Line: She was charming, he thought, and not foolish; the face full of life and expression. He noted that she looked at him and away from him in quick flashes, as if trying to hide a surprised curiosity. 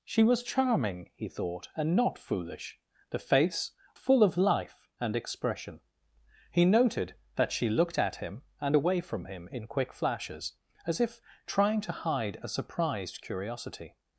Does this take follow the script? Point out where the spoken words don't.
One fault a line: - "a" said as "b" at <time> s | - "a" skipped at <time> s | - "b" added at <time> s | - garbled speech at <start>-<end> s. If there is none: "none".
none